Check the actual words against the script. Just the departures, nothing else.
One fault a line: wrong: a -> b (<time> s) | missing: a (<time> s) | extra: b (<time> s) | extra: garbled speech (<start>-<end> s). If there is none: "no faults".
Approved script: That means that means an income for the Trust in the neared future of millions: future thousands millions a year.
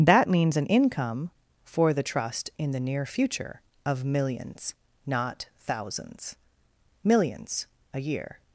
missing: that means (0.6 s)
wrong: neared -> near (2.8 s)
wrong: future -> not (5.1 s)